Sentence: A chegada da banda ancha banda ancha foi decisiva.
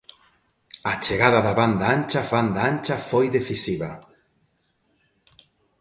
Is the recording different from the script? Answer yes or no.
no